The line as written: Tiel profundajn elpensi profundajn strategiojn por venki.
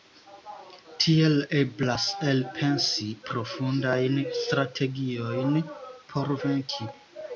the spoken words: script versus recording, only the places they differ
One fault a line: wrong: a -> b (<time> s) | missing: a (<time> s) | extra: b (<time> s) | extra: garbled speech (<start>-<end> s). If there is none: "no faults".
wrong: profundajn -> eblas (1.6 s)